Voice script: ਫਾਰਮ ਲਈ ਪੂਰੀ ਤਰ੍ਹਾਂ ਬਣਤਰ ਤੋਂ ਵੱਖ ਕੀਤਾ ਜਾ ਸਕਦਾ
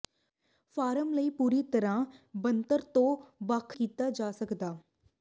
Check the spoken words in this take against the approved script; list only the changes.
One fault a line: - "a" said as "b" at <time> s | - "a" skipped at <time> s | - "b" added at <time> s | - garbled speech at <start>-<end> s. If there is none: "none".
none